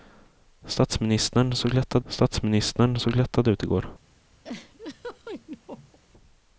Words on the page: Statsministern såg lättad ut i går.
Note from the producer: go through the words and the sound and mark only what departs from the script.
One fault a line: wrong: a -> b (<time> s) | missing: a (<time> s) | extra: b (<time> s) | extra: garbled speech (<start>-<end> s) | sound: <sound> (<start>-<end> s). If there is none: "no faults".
extra: statsministern såg lättad (2.1 s)
sound: laugh (4.4-6.0 s)